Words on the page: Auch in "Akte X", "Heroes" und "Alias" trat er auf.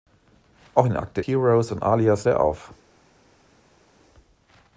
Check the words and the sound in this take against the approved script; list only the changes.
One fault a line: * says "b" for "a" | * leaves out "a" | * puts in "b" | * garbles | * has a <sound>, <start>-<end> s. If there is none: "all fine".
* leaves out "X"
* leaves out "trat"